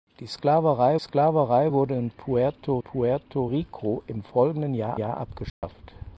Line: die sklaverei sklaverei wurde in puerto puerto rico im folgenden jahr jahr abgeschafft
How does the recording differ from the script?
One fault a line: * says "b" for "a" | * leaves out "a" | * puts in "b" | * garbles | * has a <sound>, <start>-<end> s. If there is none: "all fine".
* has a dropout, 5.5-5.6 s